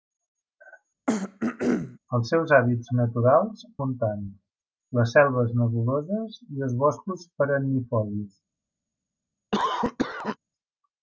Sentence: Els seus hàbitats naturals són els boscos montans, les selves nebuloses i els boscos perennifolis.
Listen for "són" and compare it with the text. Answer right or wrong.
wrong